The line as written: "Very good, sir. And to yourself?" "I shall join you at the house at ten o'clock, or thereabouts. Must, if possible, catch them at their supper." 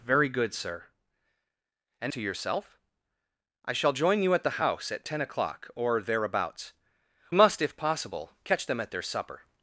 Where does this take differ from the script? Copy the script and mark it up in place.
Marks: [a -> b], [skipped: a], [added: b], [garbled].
"Very good, sir. And to yourself?" "I shall join you at the house at ten o'clock, or thereabouts. Must, if possible, catch them at their supper."